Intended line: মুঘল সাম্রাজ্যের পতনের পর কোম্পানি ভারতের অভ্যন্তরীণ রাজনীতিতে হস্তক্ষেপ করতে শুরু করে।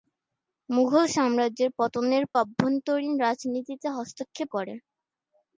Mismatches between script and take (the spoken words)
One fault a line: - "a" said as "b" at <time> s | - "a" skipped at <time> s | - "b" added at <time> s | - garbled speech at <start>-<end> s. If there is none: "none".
- "পর কোম্পানি ভারতের" skipped at 2.2 s
- "করতে শুরু" skipped at 4.5 s